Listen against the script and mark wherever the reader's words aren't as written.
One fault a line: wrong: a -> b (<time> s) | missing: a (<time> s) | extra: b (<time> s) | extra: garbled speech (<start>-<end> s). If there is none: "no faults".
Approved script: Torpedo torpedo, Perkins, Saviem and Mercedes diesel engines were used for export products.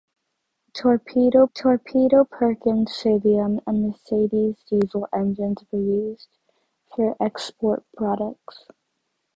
no faults